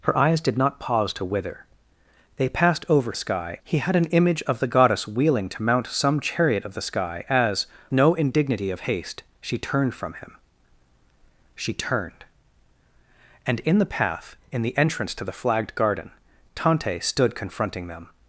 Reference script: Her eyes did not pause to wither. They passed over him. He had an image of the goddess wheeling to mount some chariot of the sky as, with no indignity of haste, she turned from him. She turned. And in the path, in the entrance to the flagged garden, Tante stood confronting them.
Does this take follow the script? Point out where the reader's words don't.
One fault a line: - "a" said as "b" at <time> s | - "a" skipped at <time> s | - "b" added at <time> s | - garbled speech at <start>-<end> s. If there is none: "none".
- "him" said as "sky" at 3.1 s
- "with" skipped at 7.7 s